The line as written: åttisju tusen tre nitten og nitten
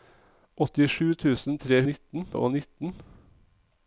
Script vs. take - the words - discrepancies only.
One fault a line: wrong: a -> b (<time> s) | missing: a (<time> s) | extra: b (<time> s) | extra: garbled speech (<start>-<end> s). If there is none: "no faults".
no faults